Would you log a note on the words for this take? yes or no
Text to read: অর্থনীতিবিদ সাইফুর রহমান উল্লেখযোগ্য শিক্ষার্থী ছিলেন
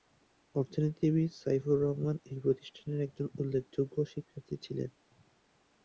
yes